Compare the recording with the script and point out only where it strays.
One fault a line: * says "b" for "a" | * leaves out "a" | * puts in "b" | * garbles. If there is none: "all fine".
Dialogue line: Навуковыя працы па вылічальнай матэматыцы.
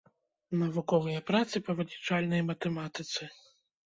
all fine